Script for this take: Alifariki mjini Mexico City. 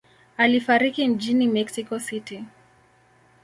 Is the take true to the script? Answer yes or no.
yes